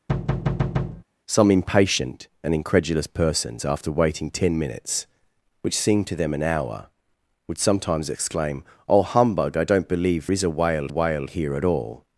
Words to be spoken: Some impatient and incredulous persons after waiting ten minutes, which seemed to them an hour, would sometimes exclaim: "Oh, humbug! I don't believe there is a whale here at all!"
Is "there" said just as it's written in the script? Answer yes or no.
no